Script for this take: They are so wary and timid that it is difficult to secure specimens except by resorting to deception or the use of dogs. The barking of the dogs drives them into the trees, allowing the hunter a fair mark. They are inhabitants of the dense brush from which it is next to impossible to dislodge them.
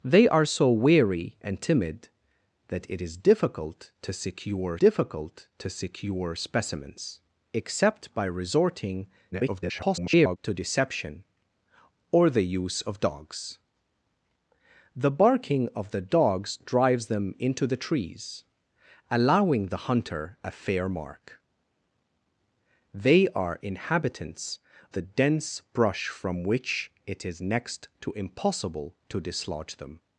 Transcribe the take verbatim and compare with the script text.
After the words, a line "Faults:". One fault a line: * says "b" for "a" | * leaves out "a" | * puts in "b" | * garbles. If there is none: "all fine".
They are so wary and timid that it is difficult to secure difficult to secure specimens except by resorting [garbled] to deception or the use of dogs. The barking of the dogs drives them into the trees, allowing the hunter a fair mark. They are inhabitants the dense brush from which it is next to impossible to dislodge them.
Faults:
* puts in "difficult to secure"
* garbles
* leaves out "of"